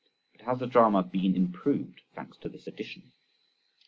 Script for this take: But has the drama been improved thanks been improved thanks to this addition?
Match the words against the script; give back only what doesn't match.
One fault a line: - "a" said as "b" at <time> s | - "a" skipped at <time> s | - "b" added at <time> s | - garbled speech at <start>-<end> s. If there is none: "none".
- "been improved thanks" skipped at 2.4 s